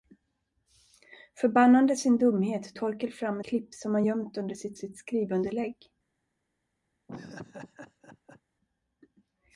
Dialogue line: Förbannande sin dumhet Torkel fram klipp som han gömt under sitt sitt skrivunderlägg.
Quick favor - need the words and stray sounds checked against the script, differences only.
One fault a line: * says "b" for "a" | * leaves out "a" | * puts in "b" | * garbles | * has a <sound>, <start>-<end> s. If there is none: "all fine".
* has a laugh, 7.1-8.4 s